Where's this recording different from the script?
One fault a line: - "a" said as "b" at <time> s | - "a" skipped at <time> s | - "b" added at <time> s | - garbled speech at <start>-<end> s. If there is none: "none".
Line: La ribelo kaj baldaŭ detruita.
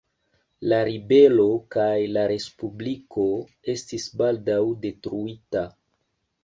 - "la respubliko estis" added at 2.1 s